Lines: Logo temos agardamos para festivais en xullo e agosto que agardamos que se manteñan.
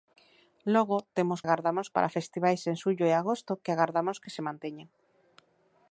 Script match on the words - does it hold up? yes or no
yes